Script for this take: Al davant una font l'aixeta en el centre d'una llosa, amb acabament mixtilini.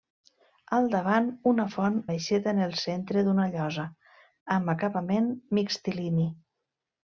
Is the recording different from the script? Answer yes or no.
no